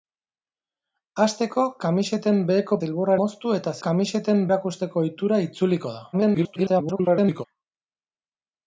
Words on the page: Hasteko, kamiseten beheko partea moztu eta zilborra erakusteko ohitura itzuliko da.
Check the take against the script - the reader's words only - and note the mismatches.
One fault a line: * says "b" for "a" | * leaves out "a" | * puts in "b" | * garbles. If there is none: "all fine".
* says "zilborra" for "partea"
* says "kamiseten" for "zilborra"
* garbles